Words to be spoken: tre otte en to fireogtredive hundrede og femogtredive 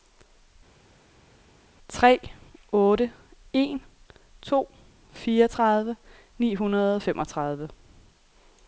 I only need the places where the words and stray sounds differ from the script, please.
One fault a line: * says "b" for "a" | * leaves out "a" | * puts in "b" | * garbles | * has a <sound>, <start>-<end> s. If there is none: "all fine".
* puts in "ni"